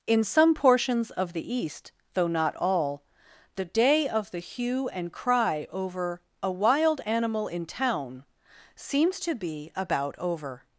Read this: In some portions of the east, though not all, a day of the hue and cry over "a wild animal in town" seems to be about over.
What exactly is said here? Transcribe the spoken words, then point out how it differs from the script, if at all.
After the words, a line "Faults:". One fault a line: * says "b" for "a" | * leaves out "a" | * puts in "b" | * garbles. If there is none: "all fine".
In some portions of the east, though not all, the day of the hue and cry over "a wild animal in town" seems to be about over.
Faults:
* says "the" for "a"